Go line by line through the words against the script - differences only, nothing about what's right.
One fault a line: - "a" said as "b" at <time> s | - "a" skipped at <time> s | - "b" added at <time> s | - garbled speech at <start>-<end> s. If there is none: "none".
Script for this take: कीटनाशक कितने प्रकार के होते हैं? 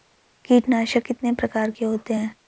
none